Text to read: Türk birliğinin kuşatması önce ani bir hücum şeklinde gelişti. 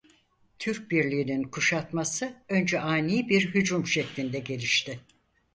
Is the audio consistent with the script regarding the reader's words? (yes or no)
yes